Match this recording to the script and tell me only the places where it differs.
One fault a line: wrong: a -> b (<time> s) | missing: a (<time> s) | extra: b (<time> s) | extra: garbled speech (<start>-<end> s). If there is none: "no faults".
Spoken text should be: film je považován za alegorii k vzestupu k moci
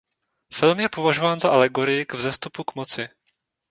no faults